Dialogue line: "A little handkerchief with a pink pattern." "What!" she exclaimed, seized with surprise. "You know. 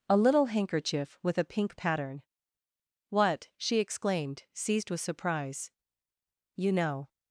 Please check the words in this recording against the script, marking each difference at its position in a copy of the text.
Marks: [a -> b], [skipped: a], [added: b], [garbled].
"A little handkerchief with a pink pattern." "What!" she exclaimed, seized with surprise. "You know.